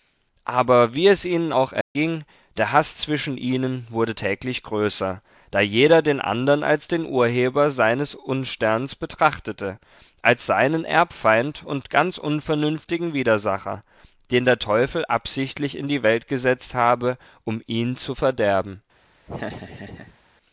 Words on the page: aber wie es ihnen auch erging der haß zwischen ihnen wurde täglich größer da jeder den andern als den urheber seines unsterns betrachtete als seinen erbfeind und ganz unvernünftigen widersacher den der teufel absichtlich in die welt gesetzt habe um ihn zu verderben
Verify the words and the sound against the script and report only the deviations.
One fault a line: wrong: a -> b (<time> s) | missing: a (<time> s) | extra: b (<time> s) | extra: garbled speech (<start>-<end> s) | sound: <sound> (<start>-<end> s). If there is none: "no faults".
sound: dropout (1.8-2.0 s)
sound: laugh (19.3-20.2 s)